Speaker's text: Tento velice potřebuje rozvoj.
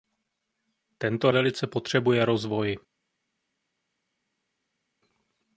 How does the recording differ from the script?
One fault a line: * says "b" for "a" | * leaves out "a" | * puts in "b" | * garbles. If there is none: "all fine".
all fine